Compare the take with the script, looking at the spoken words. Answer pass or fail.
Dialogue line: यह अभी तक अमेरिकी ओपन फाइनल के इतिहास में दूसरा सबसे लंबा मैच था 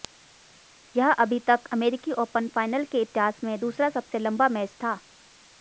pass